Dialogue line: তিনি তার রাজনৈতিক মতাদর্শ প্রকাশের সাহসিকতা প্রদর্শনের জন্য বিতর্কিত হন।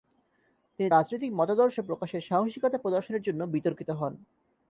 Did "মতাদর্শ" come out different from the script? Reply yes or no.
no